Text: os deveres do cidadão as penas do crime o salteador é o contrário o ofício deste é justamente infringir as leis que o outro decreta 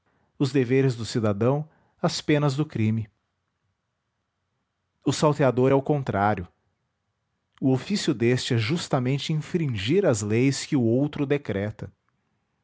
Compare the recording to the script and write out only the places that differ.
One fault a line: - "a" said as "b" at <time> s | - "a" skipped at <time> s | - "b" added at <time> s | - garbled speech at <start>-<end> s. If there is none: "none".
none